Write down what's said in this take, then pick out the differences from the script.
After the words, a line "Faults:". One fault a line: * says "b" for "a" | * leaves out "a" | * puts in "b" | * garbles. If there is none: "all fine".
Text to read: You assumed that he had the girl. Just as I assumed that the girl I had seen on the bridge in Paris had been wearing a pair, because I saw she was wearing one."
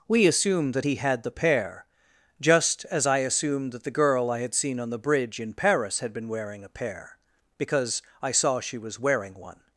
We assumed that he had the pair. Just as I assumed that the girl I had seen on the bridge in Paris had been wearing a pair, because I saw she was wearing one."
Faults:
* says "We" for "You"
* says "pair" for "girl"